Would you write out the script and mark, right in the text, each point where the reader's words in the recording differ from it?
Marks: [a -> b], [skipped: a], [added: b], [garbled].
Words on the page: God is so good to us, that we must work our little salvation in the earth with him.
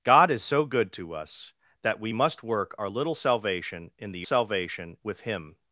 God is so good to us, that we must work our little salvation in the [earth -> salvation] with him.